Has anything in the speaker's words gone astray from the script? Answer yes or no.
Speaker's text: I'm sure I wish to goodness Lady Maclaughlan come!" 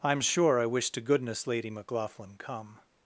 no